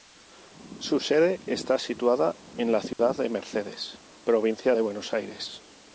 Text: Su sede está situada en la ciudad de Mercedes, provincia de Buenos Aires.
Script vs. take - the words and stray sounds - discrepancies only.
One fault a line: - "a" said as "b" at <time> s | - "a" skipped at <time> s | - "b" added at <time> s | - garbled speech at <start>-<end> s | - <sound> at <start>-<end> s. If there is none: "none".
- dropout at 2.9-3.0 s